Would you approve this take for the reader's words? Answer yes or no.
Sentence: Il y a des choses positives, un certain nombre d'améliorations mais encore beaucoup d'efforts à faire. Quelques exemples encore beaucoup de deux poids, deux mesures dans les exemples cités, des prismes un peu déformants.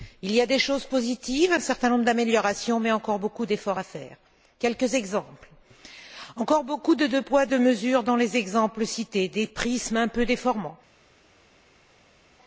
yes